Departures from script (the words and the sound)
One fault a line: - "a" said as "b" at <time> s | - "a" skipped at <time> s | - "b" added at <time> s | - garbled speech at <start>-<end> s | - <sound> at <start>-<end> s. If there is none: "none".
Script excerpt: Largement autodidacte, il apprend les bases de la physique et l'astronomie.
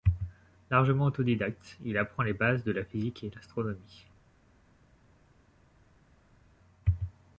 none